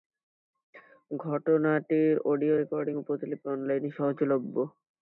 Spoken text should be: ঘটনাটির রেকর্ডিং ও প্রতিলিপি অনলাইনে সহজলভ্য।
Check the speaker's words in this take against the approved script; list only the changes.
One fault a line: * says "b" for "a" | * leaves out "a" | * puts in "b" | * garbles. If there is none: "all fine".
* puts in "অডিও"